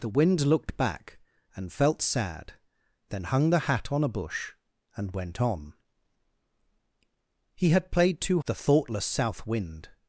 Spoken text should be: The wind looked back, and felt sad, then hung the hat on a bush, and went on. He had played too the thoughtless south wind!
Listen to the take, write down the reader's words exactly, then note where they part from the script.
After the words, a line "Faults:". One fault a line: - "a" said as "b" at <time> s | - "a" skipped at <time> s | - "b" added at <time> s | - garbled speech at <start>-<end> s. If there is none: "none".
The wind looked back, and felt sad, then hung the hat on a bush, and went on. He had played too the thoughtless south wind!
Faults:
none